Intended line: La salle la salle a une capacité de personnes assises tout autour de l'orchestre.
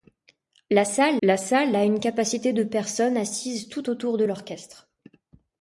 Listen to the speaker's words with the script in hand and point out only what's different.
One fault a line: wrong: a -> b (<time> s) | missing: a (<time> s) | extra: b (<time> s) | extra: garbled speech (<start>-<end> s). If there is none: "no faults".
no faults